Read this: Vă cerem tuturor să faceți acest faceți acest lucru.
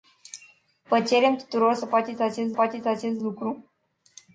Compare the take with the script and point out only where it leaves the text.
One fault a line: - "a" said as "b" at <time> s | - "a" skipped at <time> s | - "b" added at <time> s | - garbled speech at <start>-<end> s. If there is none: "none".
none